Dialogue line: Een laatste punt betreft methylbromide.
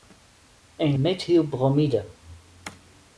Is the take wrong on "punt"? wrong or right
wrong